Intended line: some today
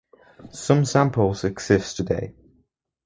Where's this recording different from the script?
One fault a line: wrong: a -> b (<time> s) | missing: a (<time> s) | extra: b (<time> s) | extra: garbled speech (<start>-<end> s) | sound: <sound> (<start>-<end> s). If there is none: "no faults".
extra: samples exist (0.8 s)